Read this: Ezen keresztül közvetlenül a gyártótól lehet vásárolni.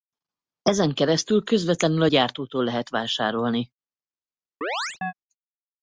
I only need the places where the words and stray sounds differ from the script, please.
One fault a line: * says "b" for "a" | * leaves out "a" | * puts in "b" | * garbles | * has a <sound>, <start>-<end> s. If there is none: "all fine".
* has a chirp, 4.6-5.1 s